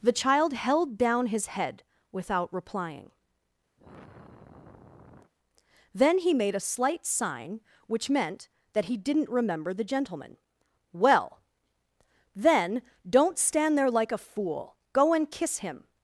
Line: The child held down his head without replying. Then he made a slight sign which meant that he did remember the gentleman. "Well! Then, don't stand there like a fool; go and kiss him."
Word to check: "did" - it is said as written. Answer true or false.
false